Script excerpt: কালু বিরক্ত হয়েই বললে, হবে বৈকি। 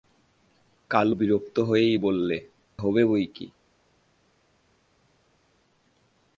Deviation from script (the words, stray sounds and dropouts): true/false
false